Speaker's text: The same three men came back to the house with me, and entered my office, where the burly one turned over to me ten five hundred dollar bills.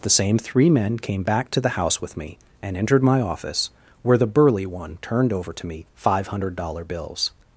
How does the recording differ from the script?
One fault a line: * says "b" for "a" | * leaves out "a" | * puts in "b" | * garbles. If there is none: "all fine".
* leaves out "ten"